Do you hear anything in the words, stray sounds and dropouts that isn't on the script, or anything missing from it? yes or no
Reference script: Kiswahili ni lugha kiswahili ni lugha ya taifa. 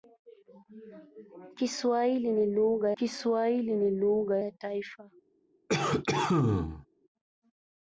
yes